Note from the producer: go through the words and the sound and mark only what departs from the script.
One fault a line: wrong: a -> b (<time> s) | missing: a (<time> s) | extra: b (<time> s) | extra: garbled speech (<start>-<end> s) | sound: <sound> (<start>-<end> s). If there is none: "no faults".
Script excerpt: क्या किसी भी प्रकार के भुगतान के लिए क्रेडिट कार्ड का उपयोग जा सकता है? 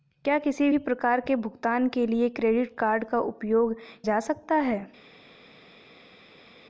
no faults